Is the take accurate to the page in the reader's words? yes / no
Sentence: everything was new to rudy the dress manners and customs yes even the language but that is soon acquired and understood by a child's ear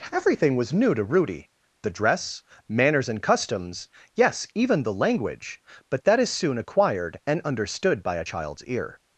yes